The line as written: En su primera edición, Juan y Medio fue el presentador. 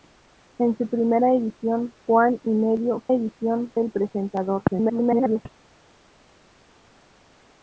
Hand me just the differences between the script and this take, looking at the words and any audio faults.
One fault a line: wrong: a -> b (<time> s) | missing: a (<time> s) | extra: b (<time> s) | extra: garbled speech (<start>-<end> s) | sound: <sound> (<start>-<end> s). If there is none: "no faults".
wrong: fue -> edición (3.1 s)
extra: garbled speech (4.7-5.5 s)